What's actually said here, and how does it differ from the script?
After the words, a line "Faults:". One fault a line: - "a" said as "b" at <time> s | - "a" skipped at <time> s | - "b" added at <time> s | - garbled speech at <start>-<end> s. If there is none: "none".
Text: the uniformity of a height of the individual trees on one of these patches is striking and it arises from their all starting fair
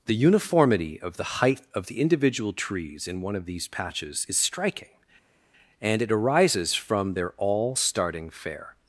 the uniformity of the height of the individual trees in one of these patches is striking and it arises from their all starting fair
Faults:
- "a" said as "the" at 1.2 s
- "on" said as "in" at 3.1 s